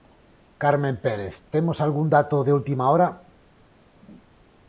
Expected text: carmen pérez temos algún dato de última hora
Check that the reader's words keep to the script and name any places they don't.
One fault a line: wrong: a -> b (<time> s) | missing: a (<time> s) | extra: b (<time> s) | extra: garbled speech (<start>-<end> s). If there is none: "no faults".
no faults